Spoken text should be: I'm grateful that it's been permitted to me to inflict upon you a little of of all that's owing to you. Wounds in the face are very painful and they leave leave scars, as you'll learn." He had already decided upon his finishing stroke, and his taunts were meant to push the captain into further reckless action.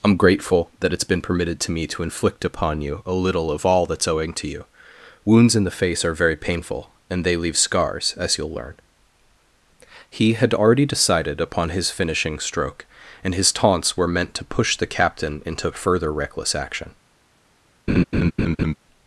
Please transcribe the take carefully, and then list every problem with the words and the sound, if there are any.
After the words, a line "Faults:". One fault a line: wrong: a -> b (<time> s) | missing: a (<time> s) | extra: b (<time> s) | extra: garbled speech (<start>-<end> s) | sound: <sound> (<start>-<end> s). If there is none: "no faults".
I'm grateful that it's been permitted to me to inflict upon you a little of all that's owing to you. Wounds in the face are very painful and they leave scars, as you'll learn." He had already decided upon his finishing stroke, and his taunts were meant to push the captain into further reckless action.
Faults:
missing: of (3.6 s)
missing: leave (7.6 s)
sound: laugh (17.9-18.7 s)